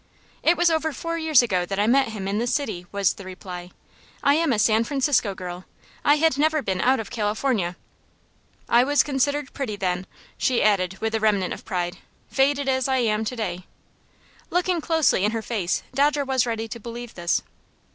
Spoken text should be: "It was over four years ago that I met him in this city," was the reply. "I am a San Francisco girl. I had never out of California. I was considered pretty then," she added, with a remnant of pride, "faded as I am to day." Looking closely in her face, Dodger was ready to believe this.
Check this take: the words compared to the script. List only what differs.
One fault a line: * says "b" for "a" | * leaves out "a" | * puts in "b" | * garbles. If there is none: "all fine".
* puts in "been"